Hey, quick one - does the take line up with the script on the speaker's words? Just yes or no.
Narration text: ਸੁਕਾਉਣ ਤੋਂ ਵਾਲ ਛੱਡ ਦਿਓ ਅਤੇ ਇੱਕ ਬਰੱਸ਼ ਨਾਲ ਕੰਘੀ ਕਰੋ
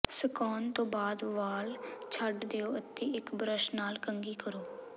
no